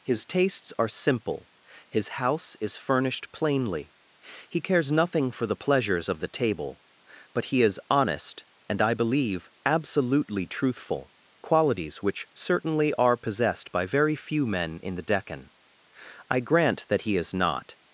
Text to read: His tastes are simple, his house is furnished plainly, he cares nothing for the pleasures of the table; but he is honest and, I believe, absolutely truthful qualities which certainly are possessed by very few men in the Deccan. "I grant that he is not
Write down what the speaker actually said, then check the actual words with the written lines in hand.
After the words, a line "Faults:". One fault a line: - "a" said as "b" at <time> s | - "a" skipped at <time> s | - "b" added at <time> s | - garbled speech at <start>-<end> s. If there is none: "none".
His tastes are simple, his house is furnished plainly, he cares nothing for the pleasures of the table; but he is honest and, I believe, absolutely truthful qualities which certainly are possessed by very few men in the Deccan. "I grant that he is not
Faults:
none